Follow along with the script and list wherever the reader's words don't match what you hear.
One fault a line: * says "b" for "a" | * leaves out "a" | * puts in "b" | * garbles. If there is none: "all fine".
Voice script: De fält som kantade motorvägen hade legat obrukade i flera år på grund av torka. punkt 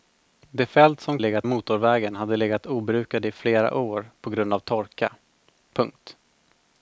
* says "legat" for "kantade"